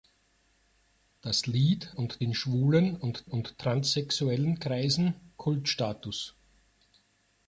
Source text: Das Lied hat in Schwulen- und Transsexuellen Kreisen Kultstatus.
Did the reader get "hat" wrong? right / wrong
wrong